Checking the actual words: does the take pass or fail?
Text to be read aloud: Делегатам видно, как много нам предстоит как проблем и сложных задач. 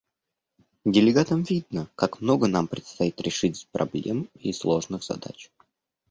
fail